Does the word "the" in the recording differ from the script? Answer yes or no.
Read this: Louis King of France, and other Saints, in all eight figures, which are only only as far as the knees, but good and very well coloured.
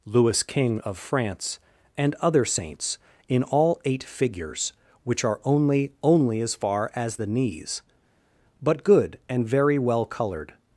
no